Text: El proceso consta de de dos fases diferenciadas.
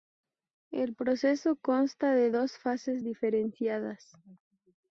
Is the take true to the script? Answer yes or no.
no